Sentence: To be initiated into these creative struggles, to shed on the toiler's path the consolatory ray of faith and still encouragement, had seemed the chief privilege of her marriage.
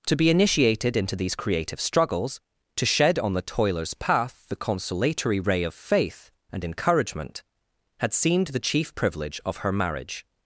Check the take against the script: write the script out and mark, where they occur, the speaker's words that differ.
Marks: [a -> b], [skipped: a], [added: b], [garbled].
To be initiated into these creative struggles, to shed on the toiler's path the consolatory ray of faith and [skipped: still] encouragement, had seemed the chief privilege of her marriage.